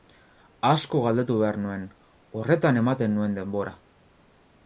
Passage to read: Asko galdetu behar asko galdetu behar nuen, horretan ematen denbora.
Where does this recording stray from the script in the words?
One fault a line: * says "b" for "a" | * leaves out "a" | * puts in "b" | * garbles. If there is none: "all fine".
* leaves out "asko galdetu behar"
* puts in "nuen"